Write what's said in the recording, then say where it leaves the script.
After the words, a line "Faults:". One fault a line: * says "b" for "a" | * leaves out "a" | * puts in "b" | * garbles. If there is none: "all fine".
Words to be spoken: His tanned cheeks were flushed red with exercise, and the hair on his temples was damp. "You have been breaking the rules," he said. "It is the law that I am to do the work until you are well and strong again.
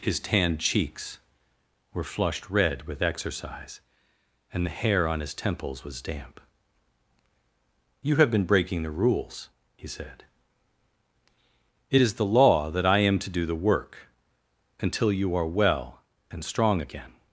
His tanned cheeks were flushed red with exercise, and the hair on his temples was damp. "You have been breaking the rules," he said. "It is the law that I am to do the work until you are well and strong again.
Faults:
all fine